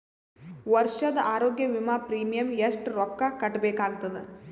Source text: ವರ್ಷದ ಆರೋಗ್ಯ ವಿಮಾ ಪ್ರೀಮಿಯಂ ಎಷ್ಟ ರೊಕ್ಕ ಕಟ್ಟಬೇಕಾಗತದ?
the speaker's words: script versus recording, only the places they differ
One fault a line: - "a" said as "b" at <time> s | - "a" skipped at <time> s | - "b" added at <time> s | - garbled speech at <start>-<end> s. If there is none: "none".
none